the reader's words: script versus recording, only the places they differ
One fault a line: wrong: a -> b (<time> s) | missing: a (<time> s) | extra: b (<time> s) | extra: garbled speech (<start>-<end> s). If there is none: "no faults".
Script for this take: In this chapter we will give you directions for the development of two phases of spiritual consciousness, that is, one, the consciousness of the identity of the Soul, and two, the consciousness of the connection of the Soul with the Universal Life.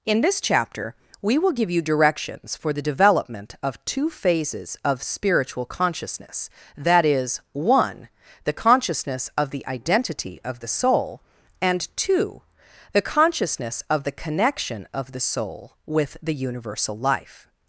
no faults